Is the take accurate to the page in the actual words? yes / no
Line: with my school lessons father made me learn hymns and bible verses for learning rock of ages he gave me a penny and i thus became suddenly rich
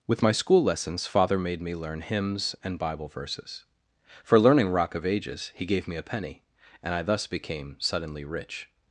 yes